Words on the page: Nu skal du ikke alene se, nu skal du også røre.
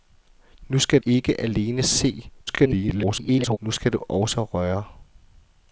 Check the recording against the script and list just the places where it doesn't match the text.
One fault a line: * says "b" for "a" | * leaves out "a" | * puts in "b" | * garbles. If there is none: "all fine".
* leaves out "du"
* garbles